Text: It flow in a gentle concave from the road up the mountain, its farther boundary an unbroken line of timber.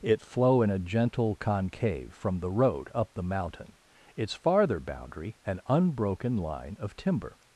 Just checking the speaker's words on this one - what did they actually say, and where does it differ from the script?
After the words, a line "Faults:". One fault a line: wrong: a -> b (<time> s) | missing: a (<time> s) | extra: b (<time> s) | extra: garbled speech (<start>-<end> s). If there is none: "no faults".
It flow in a gentle concave from the road up the mountain, its farther boundary an unbroken line of timber.
Faults:
no faults